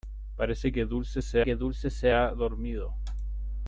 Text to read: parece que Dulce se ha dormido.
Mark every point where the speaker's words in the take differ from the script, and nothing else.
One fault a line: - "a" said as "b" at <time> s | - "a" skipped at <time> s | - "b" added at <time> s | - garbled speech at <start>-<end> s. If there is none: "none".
- "que Dulce se" added at 1.4 s